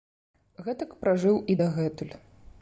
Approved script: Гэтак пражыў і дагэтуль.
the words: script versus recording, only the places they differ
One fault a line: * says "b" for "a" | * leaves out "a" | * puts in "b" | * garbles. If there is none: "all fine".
all fine